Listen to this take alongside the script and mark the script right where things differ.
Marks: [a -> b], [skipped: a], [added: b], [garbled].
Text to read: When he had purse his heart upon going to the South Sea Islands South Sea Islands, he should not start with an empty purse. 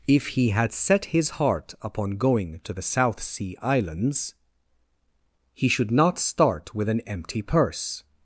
[When -> If] he had [purse -> set] his heart upon going to the South Sea Islands [skipped: South Sea Islands,] he should not start with an empty purse.